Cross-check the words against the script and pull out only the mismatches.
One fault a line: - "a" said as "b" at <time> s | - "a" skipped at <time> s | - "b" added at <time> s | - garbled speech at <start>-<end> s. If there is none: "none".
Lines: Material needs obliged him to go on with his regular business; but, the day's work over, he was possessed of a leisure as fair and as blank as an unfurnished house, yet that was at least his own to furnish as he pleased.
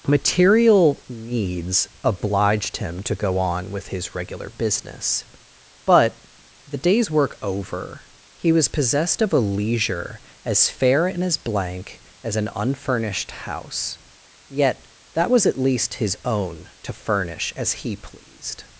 none